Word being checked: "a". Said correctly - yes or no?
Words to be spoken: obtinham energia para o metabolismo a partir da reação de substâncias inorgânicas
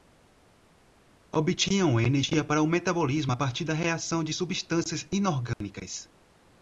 yes